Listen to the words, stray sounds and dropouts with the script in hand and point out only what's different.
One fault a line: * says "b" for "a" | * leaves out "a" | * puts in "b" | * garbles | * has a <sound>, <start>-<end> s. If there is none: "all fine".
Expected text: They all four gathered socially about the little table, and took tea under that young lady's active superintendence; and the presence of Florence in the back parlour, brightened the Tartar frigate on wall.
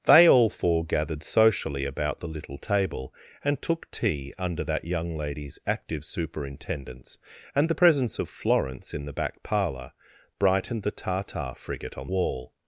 all fine